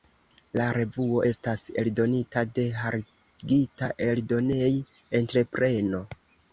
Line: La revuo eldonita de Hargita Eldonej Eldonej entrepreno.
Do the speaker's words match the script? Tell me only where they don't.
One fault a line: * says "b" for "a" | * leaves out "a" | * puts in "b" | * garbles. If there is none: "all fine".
* puts in "estas"
* leaves out "Eldonej"